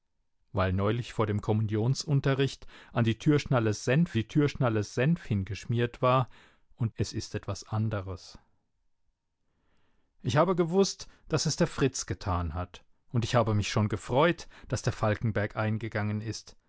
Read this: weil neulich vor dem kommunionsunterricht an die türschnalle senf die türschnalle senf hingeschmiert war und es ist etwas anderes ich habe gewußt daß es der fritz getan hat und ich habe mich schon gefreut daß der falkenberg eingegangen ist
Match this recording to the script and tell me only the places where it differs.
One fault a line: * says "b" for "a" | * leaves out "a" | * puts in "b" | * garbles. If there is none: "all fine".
all fine